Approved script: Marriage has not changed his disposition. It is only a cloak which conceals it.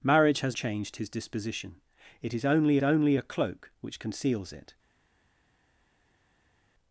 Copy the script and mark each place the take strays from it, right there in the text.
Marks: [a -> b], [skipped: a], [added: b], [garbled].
Marriage has [skipped: not] changed his disposition. It is only [added: only] a cloak which conceals it.